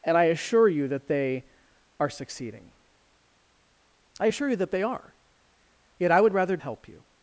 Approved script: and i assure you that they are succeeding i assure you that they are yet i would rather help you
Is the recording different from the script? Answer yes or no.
no